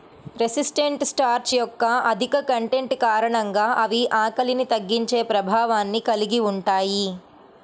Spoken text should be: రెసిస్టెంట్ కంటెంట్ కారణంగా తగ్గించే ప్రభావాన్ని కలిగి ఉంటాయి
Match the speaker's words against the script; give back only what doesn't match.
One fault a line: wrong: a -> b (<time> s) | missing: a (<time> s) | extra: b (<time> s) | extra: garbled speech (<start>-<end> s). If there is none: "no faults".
extra: స్టార్చ్ యొక్క అధిక (1.0 s)
extra: అవి ఆకలిని (3.8 s)